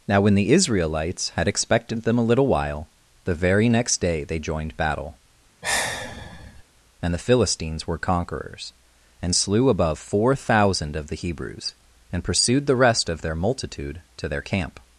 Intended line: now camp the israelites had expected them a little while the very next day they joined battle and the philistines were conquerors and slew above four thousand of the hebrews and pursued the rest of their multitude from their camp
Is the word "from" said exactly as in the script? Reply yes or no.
no